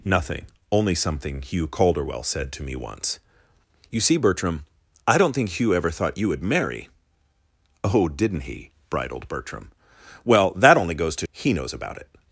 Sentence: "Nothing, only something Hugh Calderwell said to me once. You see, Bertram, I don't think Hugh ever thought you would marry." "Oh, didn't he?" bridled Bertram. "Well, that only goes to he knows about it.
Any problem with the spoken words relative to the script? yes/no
no